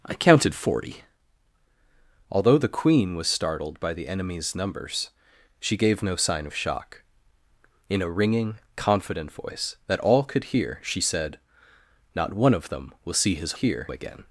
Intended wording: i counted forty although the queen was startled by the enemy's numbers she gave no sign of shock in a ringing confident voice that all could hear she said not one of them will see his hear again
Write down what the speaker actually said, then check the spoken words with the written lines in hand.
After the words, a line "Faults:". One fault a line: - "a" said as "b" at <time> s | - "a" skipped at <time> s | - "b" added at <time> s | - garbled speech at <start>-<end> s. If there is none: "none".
i counted forty although the queen was startled by the enemy's numbers she gave no sign of shock in a ringing confident voice that all could hear she said not one of them will see his hear again
Faults:
none